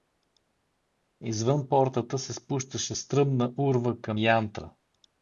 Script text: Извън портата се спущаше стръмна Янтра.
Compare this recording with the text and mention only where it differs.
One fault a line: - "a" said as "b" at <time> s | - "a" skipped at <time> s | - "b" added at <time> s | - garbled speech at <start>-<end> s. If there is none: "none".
- "урва към" added at 3.6 s